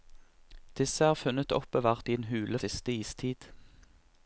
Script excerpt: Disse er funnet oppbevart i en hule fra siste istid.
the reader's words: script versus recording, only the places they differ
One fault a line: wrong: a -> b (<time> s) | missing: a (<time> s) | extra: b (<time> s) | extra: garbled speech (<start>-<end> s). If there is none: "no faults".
missing: fra (2.6 s)